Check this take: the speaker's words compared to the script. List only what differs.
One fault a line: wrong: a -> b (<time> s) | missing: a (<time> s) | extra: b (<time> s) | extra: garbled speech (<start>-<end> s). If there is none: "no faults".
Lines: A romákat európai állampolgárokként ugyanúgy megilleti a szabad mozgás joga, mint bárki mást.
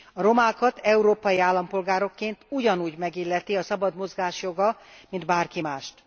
no faults